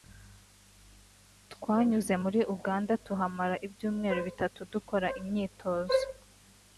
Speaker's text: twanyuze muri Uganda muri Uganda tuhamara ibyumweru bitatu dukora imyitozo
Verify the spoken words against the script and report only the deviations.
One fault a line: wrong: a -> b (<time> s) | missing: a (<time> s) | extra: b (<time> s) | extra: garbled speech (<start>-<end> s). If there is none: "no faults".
missing: muri Uganda (2.9 s)